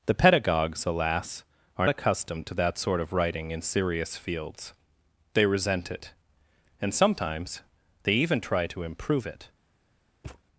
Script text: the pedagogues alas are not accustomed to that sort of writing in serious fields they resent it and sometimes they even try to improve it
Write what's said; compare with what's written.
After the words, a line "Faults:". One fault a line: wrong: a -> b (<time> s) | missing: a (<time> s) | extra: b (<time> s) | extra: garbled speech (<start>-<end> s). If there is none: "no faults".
the pedagogues alas are accustomed to that sort of writing in serious fields they resent it and sometimes they even try to improve it
Faults:
missing: not (1.9 s)